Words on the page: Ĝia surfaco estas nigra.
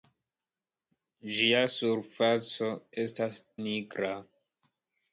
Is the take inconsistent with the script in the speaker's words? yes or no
no